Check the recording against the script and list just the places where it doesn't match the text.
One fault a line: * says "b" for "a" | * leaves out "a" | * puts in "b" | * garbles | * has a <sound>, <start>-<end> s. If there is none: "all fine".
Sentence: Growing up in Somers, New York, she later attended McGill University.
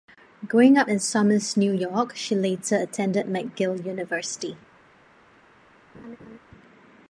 * has a laugh, 5.9-6.4 s